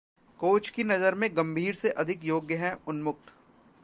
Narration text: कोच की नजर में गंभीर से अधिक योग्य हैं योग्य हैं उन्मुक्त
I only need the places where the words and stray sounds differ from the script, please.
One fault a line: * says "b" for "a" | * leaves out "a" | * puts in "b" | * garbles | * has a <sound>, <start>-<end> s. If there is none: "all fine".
* leaves out "योग्य हैं"